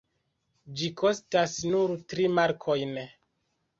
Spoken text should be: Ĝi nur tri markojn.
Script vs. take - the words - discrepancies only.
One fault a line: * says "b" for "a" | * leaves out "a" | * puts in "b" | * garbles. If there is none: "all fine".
* puts in "kostas"